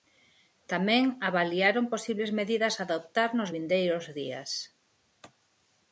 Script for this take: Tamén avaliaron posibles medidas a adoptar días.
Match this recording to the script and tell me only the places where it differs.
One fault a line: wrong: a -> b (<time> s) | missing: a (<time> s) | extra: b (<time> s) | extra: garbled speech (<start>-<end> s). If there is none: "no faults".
extra: nos vindeiros (3.4 s)